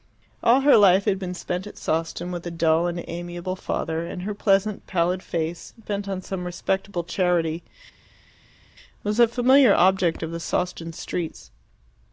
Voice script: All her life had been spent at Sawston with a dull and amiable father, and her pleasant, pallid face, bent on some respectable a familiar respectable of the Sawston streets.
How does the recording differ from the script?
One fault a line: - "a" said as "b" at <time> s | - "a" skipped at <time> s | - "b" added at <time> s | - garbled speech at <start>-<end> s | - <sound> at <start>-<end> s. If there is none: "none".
- "charity was" added at 7.0 s
- "respectable" said as "object" at 9.7 s